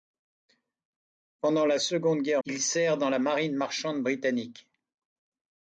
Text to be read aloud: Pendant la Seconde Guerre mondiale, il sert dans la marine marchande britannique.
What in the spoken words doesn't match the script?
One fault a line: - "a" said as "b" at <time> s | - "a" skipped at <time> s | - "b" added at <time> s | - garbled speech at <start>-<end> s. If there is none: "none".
- "mondiale" skipped at 2.4 s